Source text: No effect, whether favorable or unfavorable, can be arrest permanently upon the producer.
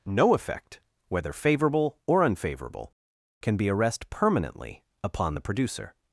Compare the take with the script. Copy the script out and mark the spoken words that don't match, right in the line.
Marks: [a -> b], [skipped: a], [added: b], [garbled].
No effect, whether favorable or unfavorable, can be arrest permanently upon the producer.